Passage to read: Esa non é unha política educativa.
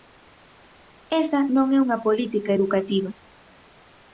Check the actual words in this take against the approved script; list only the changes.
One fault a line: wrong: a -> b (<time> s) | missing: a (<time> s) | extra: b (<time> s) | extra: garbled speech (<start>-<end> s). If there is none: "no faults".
no faults